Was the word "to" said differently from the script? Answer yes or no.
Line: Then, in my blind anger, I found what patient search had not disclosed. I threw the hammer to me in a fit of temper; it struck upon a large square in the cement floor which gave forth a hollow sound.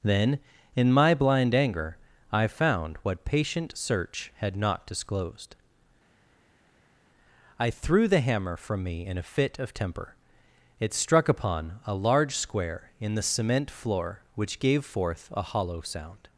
yes